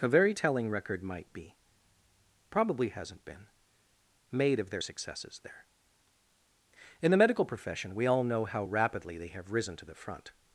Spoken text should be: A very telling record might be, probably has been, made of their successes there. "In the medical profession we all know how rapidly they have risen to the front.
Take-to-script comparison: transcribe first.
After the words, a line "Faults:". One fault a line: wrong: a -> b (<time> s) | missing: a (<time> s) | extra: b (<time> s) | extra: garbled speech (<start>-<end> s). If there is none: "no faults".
A very telling record might be, probably hasn't been, made of their successes there. "In the medical profession we all know how rapidly they have risen to the front.
Faults:
wrong: has -> hasn't (2.9 s)